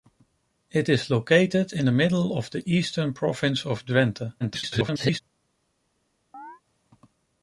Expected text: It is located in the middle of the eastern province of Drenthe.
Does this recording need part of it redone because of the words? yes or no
yes